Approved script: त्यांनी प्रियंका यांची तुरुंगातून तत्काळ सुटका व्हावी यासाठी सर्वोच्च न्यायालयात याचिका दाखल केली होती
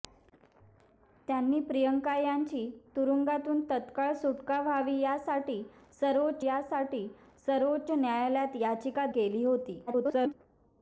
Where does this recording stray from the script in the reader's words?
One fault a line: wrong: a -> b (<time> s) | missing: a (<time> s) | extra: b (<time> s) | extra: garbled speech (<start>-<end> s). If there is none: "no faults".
extra: यासाठी सर्वोच्च (6.4 s)
missing: दाखल (9.1 s)
extra: garbled speech (9.9-10.3 s)